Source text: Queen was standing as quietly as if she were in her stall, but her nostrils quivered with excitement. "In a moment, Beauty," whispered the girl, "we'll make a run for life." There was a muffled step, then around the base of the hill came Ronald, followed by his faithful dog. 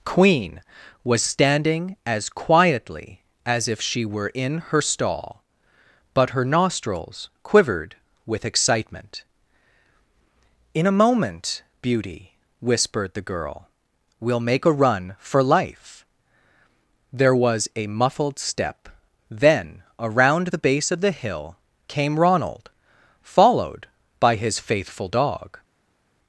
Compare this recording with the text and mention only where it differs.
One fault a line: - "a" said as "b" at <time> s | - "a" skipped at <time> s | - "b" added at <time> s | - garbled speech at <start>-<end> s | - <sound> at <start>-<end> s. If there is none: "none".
none